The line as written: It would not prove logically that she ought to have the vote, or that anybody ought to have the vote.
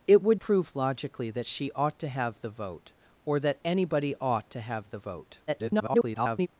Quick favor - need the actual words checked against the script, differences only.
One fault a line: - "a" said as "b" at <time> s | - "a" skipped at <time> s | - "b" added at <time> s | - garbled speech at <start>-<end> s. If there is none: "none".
- "not" skipped at 0.4 s
- garbled speech at 5.5-6.5 s